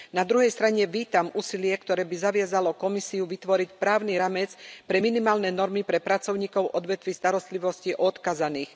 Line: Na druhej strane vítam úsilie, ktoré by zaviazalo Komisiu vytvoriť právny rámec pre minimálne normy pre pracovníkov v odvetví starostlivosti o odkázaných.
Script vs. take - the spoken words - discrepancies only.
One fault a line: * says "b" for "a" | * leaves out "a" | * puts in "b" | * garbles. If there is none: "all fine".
all fine